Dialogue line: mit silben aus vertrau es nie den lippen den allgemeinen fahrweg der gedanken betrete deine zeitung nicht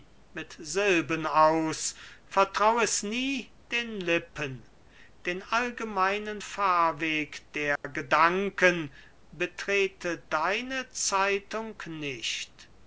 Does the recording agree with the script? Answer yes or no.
yes